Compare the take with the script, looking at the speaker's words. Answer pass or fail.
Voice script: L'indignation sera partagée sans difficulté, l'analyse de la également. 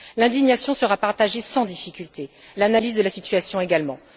fail